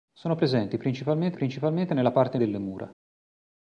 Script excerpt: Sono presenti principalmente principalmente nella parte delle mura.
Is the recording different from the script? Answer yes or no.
no